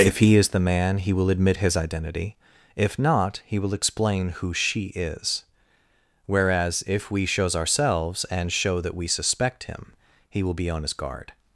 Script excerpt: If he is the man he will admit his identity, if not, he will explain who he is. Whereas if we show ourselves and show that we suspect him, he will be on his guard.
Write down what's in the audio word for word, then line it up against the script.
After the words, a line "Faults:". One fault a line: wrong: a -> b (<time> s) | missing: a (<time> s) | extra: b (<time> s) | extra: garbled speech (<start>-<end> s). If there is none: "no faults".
If he is the man he will admit his identity, if not, he will explain who she is. Whereas if we shows ourselves and show that we suspect him, he will be on his guard.
Faults:
wrong: he -> she (4.5 s)
wrong: show -> shows (7.2 s)